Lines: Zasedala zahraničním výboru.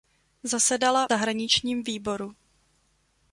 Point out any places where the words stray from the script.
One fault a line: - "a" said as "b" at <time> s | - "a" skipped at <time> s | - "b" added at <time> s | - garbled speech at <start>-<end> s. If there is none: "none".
none